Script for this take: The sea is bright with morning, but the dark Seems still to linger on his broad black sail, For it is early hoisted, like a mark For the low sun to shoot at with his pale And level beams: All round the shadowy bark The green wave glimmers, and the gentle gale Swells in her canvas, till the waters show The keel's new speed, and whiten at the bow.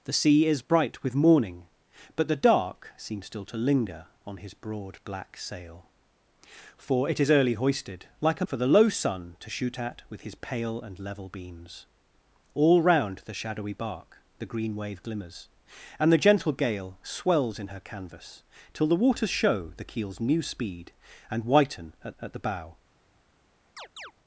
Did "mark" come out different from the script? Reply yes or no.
yes